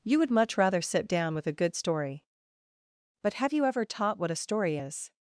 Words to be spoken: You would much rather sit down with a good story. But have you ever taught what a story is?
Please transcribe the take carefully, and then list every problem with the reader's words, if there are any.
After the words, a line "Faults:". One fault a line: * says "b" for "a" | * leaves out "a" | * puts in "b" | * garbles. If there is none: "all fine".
You would much rather sit down with a good story. But have you ever taught what a story is?
Faults:
all fine